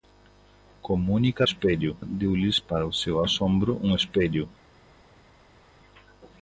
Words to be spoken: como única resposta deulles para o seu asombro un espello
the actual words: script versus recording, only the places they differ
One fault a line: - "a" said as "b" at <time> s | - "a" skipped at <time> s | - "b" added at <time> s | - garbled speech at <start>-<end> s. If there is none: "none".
- "resposta" said as "espello" at 1.4 s